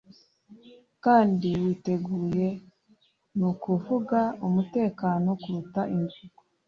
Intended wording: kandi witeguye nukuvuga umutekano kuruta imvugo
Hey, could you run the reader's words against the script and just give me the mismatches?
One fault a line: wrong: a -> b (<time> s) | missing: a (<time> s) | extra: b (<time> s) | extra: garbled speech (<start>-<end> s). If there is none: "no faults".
no faults